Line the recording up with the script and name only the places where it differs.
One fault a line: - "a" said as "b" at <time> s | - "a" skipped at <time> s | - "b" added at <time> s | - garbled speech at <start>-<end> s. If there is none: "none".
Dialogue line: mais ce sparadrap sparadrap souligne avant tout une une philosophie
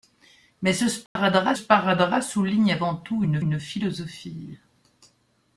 none